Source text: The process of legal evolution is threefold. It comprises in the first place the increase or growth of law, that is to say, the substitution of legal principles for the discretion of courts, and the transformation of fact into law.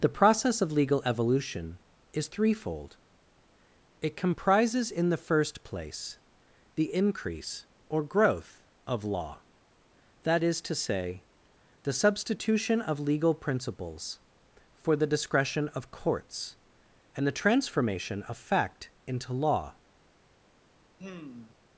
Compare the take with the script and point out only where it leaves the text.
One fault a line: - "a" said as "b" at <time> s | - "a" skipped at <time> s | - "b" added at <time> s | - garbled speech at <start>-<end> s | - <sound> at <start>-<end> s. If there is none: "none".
- sigh at 21.0-21.6 s